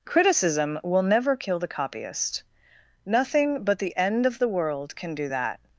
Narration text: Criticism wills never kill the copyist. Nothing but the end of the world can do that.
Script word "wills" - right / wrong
wrong